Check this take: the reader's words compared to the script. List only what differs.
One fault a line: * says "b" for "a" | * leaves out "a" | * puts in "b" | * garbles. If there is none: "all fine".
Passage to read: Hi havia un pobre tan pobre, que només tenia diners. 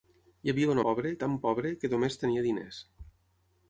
all fine